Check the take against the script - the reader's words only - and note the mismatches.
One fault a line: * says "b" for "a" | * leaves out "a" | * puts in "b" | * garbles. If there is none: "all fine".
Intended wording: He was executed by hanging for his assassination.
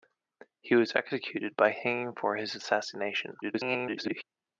* garbles